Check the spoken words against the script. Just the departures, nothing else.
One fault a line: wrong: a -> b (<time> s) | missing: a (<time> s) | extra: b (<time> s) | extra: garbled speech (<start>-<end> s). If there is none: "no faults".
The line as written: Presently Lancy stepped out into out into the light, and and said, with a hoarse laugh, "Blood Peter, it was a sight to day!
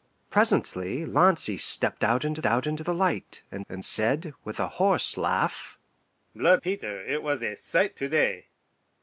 no faults